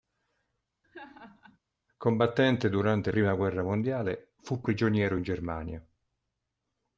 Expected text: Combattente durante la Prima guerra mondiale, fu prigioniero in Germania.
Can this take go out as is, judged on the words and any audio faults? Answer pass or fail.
fail